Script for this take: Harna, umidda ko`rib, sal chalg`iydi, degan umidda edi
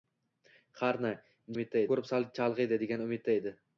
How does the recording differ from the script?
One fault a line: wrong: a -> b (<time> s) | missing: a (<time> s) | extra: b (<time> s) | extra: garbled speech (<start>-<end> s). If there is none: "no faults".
no faults